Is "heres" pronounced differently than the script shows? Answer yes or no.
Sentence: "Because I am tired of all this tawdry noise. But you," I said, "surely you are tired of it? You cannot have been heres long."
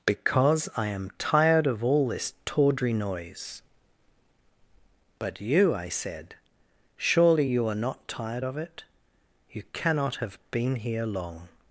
yes